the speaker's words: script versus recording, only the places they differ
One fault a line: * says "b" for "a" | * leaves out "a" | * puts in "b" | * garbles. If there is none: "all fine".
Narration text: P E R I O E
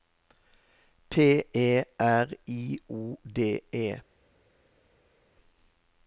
* puts in "D"